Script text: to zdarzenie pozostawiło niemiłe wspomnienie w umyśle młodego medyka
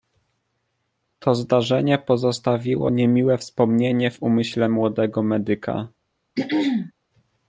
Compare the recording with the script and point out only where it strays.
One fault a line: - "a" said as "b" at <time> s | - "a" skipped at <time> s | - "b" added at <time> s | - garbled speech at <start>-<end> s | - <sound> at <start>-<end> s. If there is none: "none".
- throat clearing at 6.3-6.9 s